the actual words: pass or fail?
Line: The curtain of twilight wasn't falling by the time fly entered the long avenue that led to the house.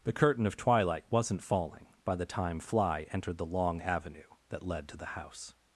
pass